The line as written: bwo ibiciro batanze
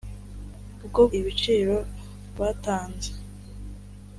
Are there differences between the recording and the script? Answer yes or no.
no